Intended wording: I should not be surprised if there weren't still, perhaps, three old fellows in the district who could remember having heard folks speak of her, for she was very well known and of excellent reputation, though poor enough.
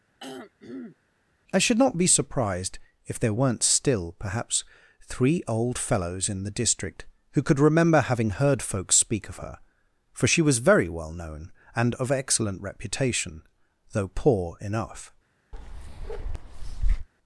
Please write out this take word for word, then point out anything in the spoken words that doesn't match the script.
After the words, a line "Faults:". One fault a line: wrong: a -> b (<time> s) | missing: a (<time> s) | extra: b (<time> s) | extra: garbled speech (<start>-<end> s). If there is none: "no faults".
I should not be surprised if there weren't still, perhaps, three old fellows in the district who could remember having heard folks speak of her, for she was very well known and of excellent reputation, though poor enough.
Faults:
no faults